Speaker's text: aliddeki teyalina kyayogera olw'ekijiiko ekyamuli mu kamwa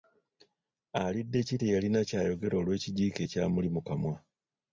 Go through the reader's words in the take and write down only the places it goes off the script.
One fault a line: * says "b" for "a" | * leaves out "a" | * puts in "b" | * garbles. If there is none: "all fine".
all fine